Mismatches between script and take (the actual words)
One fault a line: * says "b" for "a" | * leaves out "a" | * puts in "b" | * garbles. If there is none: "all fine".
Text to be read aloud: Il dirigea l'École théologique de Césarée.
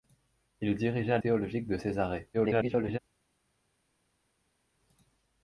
* leaves out "l'École"
* garbles